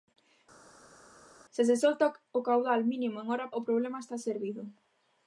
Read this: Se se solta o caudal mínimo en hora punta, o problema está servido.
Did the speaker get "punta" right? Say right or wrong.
wrong